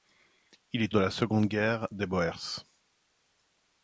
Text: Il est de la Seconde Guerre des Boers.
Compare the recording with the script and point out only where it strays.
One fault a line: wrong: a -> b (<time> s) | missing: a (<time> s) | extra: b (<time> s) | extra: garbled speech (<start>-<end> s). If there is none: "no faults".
no faults